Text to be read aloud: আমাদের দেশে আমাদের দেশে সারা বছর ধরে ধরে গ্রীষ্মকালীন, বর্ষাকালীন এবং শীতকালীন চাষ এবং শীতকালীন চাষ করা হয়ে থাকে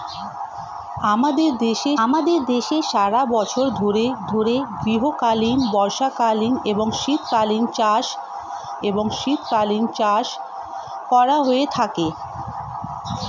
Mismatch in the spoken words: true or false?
false